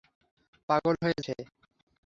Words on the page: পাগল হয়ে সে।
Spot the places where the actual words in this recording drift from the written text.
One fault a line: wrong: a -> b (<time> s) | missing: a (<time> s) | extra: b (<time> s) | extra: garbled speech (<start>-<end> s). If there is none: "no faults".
no faults